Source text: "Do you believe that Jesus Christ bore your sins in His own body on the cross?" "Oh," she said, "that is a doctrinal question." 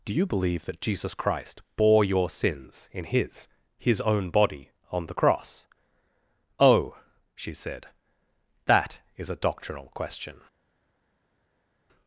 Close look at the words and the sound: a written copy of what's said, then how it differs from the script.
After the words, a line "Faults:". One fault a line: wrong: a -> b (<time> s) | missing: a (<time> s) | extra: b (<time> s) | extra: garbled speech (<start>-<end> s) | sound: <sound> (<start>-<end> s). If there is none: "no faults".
"Do you believe that Jesus Christ bore your sins in His His own body on the cross?" "Oh," she said, "that is a doctrinal question."
Faults:
extra: His (3.8 s)